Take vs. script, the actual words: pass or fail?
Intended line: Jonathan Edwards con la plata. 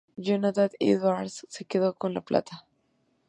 fail